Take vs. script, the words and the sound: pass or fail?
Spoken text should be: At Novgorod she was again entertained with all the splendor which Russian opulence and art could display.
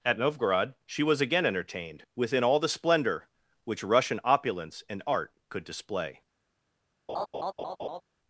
fail